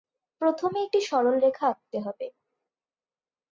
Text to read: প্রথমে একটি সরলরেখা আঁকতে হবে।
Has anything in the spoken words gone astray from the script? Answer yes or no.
no